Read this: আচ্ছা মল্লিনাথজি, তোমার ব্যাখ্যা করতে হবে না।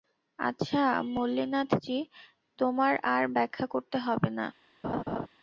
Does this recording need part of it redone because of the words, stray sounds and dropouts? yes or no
yes